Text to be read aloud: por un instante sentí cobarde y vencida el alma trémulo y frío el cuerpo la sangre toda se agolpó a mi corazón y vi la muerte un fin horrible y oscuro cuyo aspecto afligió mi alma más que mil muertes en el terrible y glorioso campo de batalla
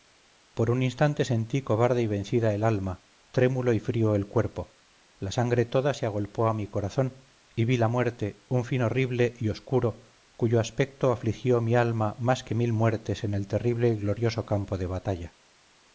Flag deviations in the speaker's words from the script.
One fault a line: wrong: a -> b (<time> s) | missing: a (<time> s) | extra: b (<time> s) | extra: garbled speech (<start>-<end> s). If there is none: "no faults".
no faults